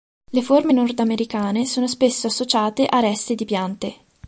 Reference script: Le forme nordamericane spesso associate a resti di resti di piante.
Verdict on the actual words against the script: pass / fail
fail